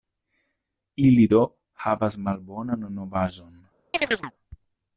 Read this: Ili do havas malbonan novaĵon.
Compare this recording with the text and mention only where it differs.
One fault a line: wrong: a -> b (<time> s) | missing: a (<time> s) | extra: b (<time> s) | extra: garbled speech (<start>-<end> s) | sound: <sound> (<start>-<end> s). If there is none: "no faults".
sound: chirp (3.9-4.3 s)